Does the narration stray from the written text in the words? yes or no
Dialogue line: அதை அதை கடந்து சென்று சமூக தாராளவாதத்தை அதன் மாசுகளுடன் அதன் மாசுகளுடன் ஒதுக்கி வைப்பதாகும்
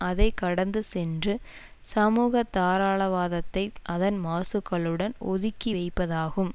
yes